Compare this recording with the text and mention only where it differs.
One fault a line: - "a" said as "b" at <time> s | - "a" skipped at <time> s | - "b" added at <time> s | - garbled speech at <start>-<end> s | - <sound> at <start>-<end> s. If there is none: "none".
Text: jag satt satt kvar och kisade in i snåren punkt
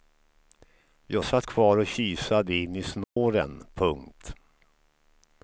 - "satt" skipped at 1.5 s
- dropout at 3.0-3.2 s